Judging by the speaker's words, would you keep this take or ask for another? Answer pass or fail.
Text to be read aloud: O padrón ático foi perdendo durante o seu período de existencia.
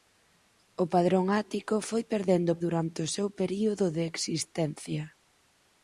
pass